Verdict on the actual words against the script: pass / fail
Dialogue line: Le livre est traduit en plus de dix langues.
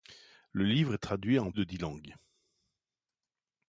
fail